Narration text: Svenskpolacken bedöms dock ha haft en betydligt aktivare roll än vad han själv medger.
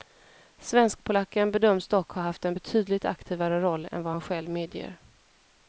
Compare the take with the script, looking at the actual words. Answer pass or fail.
pass